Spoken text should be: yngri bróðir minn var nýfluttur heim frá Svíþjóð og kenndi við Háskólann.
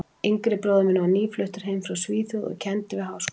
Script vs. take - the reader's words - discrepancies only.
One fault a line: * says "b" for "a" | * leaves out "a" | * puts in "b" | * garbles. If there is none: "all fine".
all fine